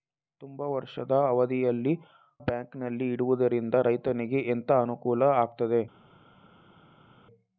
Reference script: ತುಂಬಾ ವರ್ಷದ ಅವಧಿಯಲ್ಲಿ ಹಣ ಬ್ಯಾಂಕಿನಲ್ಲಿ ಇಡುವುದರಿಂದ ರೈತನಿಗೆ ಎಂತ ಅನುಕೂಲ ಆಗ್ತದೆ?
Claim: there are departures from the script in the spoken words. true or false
true